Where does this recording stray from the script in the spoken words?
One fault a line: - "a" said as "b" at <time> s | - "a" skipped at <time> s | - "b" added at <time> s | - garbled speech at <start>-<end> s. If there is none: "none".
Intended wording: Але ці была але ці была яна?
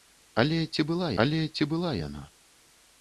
none